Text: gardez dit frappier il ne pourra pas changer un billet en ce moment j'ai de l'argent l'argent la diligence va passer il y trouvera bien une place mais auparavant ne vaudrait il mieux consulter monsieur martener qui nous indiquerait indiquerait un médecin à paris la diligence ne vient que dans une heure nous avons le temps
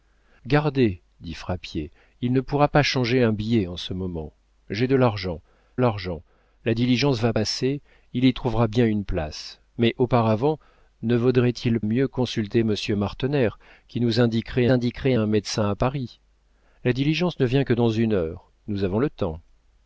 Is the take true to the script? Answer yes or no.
yes